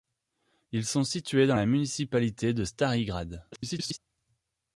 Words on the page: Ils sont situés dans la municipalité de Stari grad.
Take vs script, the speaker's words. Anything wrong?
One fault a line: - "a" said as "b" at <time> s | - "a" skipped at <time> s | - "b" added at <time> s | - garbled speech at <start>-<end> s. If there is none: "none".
- garbled speech at 3.5-4.0 s